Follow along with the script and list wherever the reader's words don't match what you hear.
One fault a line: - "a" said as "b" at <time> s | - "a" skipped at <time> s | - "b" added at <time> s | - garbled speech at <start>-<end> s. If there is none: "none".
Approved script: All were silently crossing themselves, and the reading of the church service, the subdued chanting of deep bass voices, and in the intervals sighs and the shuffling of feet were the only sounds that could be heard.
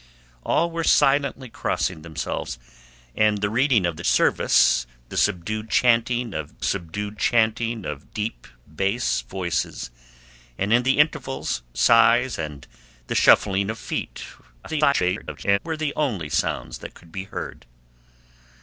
- "church" skipped at 4.0 s
- "subdued chanting of" added at 6.6 s
- garbled speech at 14.6-15.6 s